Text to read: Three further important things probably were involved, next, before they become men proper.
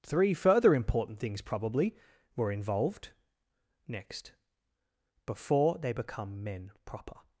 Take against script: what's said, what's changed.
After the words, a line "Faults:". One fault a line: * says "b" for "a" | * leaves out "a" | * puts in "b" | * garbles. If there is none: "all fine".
Three further important things probably were involved, next, before they become men proper.
Faults:
all fine